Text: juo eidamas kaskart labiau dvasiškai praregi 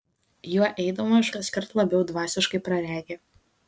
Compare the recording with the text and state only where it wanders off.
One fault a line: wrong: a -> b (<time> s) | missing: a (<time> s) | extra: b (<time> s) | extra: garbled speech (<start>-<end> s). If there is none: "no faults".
no faults